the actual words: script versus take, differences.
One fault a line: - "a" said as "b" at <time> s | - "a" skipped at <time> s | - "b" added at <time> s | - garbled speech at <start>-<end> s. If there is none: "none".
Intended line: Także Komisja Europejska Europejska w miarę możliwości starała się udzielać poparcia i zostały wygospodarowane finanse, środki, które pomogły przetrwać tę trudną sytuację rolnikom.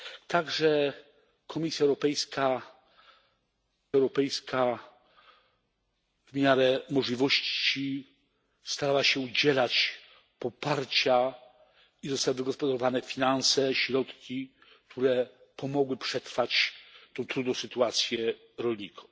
none